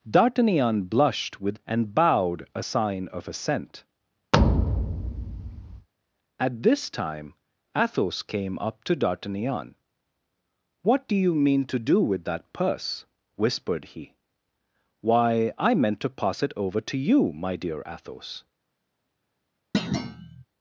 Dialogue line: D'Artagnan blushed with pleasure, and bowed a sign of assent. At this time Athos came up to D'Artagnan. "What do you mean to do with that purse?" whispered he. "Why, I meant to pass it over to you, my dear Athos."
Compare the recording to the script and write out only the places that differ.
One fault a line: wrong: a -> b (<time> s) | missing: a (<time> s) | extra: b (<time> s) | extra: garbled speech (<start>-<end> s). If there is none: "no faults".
missing: pleasure (1.6 s)